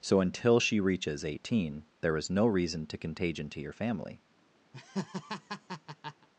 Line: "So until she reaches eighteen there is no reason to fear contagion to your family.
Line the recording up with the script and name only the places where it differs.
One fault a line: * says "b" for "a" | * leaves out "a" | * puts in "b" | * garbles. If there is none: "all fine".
* leaves out "fear"